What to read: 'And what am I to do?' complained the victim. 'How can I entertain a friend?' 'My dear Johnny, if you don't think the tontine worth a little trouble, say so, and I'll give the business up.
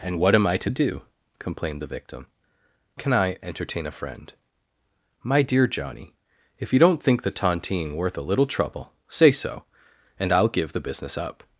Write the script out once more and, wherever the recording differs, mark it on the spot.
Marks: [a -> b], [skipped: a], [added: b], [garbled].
'And what am I to do?' complained the victim. [skipped: 'How] can I entertain a friend?' 'My dear Johnny, if you don't think the tontine worth a little trouble, say so, and I'll give the business up.